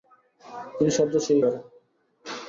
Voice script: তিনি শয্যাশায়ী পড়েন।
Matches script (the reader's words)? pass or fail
pass